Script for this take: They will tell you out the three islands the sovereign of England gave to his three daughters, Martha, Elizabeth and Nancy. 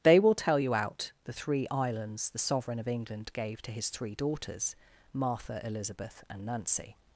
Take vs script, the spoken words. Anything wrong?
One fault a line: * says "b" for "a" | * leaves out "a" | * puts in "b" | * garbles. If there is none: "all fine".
all fine